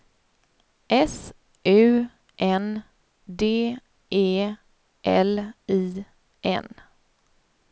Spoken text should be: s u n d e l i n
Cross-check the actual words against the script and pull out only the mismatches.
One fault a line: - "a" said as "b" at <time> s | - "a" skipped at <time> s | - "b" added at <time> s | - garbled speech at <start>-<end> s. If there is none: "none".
none